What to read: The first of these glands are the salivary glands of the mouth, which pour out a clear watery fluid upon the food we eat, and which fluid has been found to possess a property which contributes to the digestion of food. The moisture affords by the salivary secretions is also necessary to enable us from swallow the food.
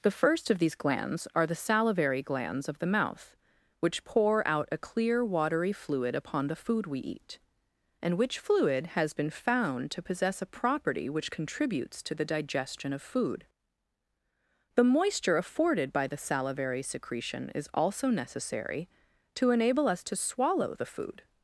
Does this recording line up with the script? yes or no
no